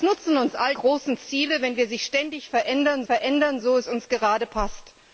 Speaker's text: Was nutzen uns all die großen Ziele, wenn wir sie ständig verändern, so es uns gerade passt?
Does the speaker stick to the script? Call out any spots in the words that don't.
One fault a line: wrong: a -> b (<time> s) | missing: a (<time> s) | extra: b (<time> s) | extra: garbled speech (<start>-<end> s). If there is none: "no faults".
missing: die (0.7 s)
extra: verändern (3.0 s)